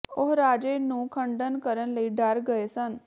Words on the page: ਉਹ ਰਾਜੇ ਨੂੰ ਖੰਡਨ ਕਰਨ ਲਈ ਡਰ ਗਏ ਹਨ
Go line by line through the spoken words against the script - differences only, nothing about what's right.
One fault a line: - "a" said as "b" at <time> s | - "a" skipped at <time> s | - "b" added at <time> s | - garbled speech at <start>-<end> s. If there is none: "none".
- "ਹਨ" said as "ਸਨ" at 2.7 s